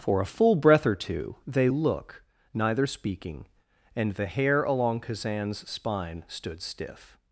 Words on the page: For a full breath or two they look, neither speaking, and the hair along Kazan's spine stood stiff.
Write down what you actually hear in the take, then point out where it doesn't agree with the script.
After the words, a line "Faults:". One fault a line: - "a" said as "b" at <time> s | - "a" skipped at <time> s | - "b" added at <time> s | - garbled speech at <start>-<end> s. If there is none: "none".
For a full breath or two they look, neither speaking, and the hair along Kazan's spine stood stiff.
Faults:
none